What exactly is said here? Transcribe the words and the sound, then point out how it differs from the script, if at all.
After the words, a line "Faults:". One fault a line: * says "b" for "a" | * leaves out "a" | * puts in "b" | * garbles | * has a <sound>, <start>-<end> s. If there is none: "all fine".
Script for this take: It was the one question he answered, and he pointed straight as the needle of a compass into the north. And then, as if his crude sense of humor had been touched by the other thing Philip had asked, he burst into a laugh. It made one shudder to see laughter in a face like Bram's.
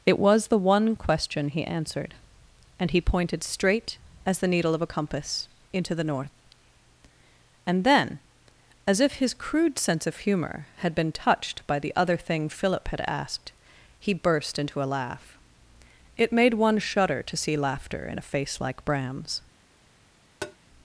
It was the one question he answered, and he pointed straight as the needle of a compass into the north. And then, as if his crude sense of humor had been touched by the other thing Philip had asked, he burst into a laugh. It made one shudder to see laughter in a face like Bram's.
Faults:
* has a tap, 20.4-20.6 s